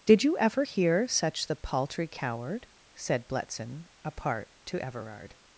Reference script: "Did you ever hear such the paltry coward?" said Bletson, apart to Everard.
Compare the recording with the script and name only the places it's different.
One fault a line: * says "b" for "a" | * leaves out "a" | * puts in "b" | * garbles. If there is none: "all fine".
all fine